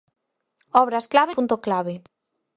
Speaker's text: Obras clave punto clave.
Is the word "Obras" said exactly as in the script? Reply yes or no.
yes